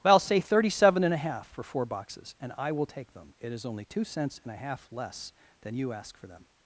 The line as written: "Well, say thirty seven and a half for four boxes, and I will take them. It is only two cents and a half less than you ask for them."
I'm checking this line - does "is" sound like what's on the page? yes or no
yes